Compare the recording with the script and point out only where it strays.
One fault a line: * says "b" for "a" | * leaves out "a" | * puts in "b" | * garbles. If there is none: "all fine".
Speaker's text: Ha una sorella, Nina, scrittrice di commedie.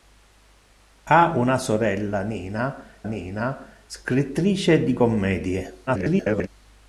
* puts in "Nina"
* garbles